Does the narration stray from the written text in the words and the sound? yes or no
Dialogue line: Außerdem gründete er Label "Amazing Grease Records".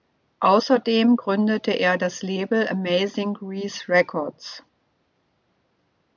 yes